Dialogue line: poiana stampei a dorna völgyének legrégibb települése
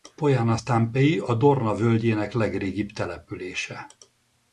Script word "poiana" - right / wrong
right